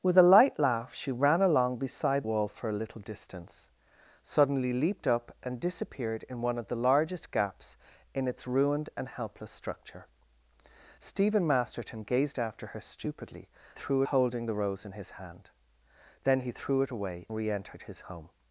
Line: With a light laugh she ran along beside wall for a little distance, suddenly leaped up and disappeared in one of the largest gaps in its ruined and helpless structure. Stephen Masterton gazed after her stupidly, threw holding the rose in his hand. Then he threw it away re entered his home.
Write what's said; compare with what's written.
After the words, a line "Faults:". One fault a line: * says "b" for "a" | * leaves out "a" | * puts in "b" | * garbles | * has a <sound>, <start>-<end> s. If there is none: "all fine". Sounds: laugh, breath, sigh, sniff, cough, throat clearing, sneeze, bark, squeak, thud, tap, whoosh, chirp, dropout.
With a light laugh she ran along beside wall for a little distance, suddenly leaped up and disappeared in one of the largest gaps in its ruined and helpless structure. Stephen Masterton gazed after her stupidly, threw holding the rose in his hand. Then he threw it away re entered his home.
Faults:
all fine